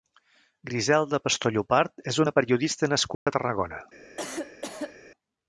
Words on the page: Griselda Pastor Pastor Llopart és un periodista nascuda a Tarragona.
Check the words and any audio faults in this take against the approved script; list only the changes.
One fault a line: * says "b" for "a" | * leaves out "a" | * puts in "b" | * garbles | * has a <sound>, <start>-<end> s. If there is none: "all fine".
* leaves out "Pastor"
* says "una" for "un"
* has a dropout, 3.1-3.3 s
* has a cough, 4.2-5.0 s